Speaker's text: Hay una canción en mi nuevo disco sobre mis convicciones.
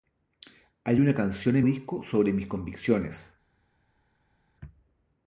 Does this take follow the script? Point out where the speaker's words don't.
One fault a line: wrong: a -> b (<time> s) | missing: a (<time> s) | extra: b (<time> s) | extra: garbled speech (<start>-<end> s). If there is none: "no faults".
missing: mi nuevo (1.6 s)